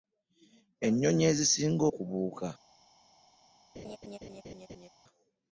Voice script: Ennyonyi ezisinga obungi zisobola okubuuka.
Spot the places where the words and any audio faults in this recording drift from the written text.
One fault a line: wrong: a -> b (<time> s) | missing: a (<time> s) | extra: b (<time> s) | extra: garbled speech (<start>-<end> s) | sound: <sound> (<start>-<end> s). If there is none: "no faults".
missing: obungi zisobola (1.8 s)
sound: laugh (3.7-4.9 s)